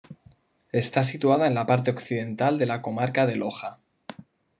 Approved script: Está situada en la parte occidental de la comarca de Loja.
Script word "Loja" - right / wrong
right